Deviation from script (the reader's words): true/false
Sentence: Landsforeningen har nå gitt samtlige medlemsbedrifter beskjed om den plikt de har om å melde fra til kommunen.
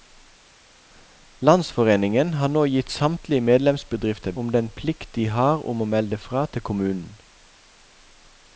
true